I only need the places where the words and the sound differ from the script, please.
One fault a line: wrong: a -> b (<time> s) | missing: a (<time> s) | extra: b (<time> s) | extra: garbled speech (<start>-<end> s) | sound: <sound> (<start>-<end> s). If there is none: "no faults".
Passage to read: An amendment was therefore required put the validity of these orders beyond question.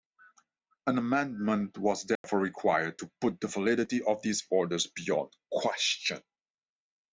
sound: dropout (2.2-2.2 s)
extra: to (3.0 s)